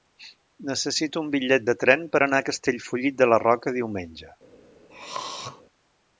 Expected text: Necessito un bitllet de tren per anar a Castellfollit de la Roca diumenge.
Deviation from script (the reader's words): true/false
false